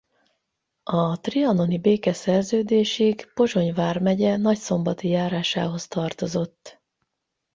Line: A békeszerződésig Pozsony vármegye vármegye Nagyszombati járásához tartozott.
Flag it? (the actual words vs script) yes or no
yes